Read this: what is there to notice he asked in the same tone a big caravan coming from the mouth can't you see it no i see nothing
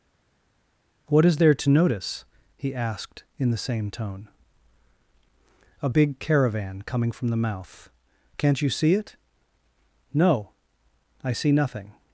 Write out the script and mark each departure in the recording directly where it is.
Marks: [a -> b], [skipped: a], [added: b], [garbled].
what is there to notice he asked in the same tone a big caravan coming from the mouth can't you see it no i see nothing